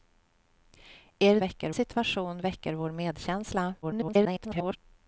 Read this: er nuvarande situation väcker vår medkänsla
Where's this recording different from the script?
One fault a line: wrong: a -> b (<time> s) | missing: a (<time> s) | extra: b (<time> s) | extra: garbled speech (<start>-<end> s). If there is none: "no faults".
wrong: nuvarande -> väcker (1.4 s)
extra: garbled speech (3.8-4.8 s)